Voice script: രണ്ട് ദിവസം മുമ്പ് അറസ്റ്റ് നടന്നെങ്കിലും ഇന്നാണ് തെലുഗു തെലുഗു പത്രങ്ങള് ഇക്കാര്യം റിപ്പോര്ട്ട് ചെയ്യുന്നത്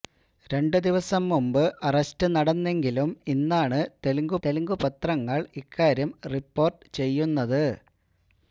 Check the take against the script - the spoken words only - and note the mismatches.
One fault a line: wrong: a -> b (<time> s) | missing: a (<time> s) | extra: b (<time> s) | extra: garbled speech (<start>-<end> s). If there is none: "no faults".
no faults